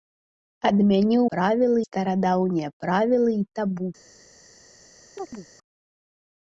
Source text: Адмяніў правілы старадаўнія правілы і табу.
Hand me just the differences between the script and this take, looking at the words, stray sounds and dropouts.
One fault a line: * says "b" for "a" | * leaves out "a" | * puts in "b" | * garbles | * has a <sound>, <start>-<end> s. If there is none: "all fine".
* has a chirp, 5.2-5.5 s